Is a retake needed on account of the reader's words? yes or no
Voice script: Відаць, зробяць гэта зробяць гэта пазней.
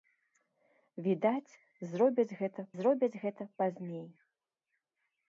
no